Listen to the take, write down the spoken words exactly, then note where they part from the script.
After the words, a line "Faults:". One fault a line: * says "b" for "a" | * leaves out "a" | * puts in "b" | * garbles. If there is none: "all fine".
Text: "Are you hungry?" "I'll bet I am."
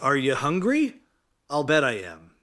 "Are you hungry?" "I'll bet I am."
Faults:
all fine